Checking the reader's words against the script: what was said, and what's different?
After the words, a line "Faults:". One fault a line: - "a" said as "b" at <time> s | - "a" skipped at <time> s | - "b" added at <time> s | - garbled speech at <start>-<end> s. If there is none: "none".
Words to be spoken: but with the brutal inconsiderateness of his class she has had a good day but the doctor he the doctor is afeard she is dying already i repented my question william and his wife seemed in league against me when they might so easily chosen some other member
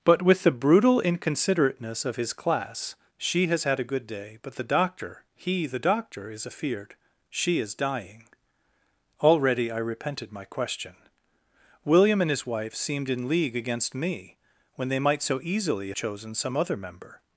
but with the brutal inconsiderateness of his class she has had a good day but the doctor he the doctor is afeard she is dying already i repented my question william and his wife seemed in league against me when they might so easily chosen some other member
Faults:
none